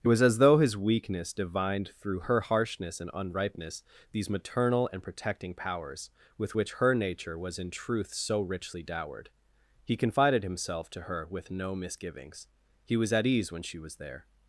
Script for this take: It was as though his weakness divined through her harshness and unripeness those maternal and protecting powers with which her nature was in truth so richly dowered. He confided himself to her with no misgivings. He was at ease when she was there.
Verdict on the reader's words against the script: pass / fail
fail